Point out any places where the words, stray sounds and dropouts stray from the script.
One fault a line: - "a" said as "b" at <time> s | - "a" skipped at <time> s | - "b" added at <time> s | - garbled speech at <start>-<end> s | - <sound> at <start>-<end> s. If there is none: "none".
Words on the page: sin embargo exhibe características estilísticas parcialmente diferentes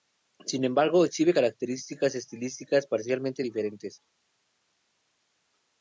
none